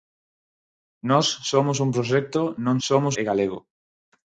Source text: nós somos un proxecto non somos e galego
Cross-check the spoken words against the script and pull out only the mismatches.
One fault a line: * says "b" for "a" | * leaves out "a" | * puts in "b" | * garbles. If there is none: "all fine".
all fine